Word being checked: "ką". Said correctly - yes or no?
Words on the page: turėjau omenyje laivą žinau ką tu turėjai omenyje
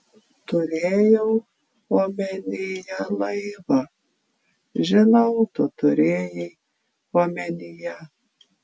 no